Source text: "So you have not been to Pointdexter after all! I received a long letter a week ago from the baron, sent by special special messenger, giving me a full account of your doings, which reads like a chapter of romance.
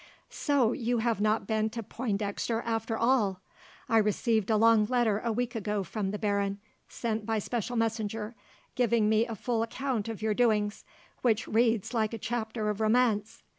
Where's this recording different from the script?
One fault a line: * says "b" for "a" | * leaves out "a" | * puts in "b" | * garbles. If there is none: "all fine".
* leaves out "special"